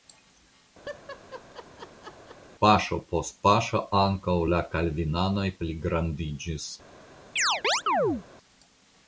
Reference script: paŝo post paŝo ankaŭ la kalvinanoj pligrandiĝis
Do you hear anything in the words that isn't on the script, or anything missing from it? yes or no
no